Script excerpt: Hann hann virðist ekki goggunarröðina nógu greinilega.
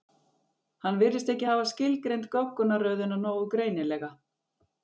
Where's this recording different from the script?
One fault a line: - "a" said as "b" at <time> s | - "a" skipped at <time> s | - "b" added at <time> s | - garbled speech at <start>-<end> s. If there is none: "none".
- "hann" skipped at 1.0 s
- "hafa skilgreint" added at 1.5 s